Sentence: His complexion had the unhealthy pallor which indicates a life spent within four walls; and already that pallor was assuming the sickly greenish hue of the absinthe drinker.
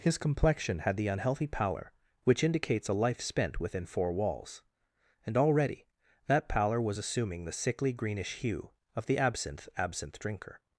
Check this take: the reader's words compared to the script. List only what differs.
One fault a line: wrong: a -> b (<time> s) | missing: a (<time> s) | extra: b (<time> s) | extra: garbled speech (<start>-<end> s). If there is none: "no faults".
extra: absinthe (9.8 s)